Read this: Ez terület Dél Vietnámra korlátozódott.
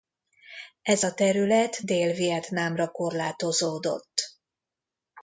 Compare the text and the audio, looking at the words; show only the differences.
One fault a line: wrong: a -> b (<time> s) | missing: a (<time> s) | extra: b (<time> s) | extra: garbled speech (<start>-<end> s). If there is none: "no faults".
extra: a (1.0 s)